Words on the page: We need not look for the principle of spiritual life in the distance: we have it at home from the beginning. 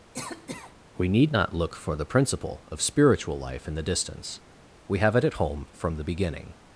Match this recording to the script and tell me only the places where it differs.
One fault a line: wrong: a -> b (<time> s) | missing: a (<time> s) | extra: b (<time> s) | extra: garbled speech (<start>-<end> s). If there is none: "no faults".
no faults